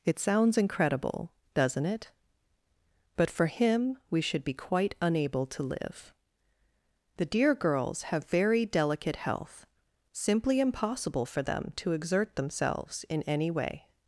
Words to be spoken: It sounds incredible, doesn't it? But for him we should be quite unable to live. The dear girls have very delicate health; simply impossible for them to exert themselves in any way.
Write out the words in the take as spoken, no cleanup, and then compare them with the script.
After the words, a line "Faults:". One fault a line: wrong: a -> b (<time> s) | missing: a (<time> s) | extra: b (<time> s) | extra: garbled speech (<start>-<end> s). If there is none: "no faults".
It sounds incredible, doesn't it? But for him we should be quite unable to live. The dear girls have very delicate health; simply impossible for them to exert themselves in any way.
Faults:
no faults